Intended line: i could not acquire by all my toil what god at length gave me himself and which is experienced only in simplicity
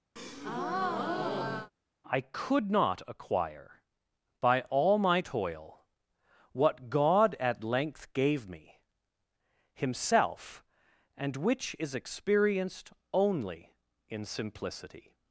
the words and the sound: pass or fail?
fail